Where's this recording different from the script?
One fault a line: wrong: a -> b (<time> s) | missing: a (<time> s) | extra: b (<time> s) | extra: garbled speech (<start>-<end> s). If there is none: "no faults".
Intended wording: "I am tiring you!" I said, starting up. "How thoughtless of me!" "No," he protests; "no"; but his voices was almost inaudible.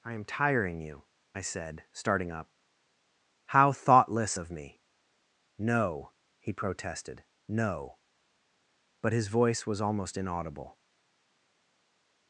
wrong: protests -> protested (6.5 s)
wrong: voices -> voice (9.3 s)